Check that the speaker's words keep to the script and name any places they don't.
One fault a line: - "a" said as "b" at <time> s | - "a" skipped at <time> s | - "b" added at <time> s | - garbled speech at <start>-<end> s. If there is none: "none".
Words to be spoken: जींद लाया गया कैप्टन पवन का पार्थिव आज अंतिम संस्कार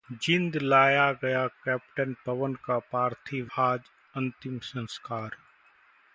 none